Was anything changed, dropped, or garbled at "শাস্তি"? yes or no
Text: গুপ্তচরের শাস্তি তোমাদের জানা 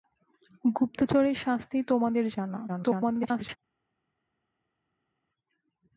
no